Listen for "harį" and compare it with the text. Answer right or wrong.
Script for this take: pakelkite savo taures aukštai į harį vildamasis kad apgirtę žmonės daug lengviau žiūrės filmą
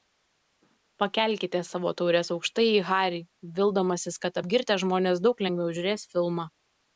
right